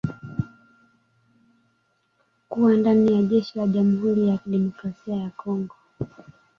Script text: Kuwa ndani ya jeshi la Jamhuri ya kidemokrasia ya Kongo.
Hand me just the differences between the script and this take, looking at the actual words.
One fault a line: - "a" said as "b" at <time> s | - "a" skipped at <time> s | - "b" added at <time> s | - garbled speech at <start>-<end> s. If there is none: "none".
none